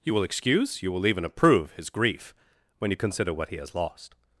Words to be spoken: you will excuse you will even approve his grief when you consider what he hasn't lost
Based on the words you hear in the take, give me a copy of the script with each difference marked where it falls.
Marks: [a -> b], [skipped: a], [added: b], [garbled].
you will excuse you will even approve his grief when you consider what he [hasn't -> has] lost